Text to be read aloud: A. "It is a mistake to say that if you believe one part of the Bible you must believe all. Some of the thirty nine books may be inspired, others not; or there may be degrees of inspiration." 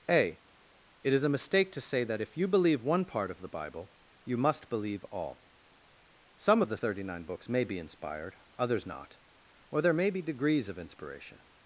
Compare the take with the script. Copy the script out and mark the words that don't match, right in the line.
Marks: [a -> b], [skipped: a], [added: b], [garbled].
A. "It is a mistake to say that if you believe one part of the Bible you must believe all. Some of the thirty nine books may be inspired, others not; or there may be degrees of inspiration."